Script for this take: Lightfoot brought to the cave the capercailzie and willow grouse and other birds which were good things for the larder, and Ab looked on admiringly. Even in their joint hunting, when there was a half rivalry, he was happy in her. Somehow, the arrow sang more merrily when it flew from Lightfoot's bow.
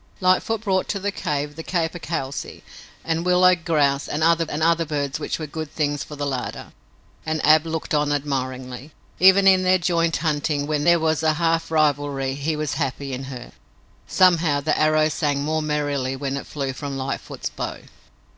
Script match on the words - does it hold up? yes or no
no